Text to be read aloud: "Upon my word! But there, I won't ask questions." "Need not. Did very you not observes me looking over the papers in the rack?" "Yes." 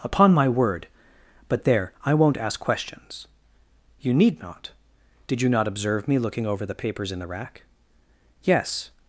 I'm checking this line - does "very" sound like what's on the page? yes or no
no